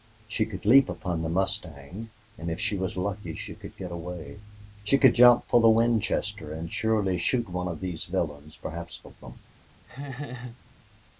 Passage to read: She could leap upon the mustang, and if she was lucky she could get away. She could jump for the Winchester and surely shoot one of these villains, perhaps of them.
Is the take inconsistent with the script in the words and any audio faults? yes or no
yes